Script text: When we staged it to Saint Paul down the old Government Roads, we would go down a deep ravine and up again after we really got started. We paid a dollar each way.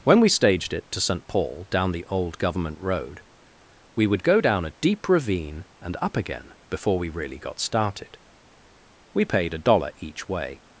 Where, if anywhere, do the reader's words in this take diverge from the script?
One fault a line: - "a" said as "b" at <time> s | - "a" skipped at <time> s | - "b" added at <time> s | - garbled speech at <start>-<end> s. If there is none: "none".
- "Roads" said as "Road" at 2.8 s
- "after" said as "before" at 6.7 s